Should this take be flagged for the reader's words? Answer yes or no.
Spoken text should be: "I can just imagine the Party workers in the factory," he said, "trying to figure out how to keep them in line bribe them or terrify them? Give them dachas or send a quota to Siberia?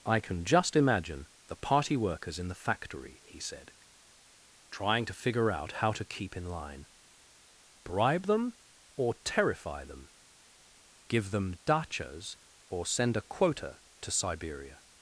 yes